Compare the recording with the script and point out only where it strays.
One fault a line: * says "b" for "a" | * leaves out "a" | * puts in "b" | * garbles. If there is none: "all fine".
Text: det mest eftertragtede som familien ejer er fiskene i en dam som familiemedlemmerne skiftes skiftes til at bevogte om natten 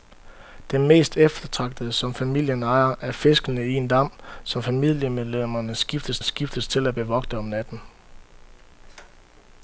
all fine